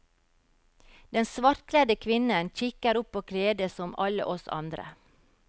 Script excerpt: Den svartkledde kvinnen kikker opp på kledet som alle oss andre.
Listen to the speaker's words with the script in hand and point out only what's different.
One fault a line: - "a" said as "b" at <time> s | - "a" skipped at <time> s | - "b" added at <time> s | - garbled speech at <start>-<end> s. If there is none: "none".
none